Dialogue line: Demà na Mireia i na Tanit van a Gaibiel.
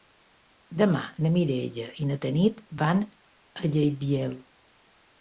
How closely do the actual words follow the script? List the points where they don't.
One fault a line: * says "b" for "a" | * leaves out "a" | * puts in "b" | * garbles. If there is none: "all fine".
all fine